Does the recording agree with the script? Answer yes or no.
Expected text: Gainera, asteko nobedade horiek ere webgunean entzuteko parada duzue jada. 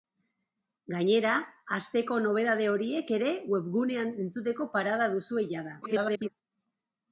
no